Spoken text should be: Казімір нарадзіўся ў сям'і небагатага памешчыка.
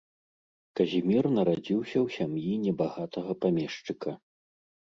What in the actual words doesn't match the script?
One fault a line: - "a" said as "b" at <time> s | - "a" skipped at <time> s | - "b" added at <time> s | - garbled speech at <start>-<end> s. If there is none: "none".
none